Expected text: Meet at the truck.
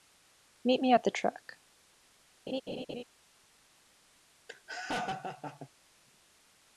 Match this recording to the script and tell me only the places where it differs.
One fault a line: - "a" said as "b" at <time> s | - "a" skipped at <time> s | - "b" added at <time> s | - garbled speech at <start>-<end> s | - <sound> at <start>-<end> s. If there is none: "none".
- "me" added at 0.8 s
- laugh at 2.5-3.0 s
- laugh at 4.5-5.7 s